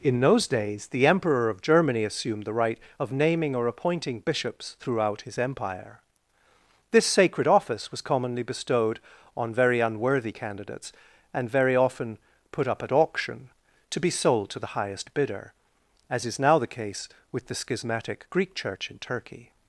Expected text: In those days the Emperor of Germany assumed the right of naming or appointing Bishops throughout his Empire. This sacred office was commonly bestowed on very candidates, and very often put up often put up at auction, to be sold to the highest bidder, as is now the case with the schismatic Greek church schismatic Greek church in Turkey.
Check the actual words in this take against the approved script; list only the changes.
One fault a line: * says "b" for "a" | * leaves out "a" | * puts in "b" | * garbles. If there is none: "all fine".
* puts in "unworthy"
* leaves out "often put up"
* leaves out "schismatic Greek church"